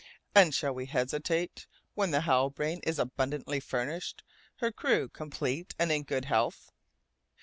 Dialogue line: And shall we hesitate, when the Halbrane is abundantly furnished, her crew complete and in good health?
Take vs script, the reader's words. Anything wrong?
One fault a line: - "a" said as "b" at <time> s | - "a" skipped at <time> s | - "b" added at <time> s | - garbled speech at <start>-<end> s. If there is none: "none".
none